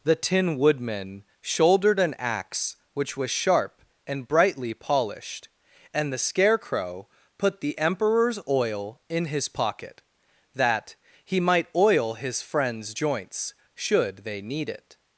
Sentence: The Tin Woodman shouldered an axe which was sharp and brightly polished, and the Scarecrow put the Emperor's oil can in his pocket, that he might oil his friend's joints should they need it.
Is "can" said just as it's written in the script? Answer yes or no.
no